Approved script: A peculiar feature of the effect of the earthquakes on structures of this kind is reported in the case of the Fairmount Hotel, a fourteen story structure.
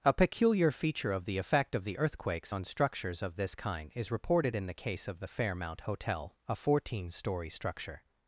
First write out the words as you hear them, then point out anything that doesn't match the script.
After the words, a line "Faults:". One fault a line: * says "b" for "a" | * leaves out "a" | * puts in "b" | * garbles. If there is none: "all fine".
A peculiar feature of the effect of the earthquakes on structures of this kind is reported in the case of the Fairmount Hotel, a fourteen story structure.
Faults:
all fine